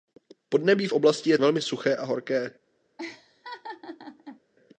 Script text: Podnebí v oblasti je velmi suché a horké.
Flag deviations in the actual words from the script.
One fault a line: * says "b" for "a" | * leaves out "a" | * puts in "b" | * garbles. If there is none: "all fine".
all fine